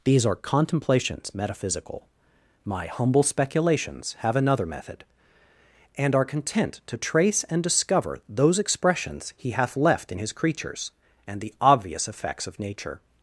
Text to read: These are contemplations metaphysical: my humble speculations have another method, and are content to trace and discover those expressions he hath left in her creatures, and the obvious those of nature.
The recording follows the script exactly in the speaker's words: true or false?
false